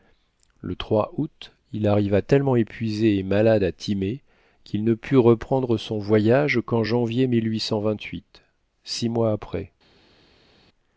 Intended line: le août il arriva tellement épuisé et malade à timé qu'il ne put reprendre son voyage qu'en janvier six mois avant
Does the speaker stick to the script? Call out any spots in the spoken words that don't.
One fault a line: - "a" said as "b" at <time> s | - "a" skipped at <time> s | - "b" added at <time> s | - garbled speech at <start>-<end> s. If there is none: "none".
- "avant" said as "après" at 9.3 s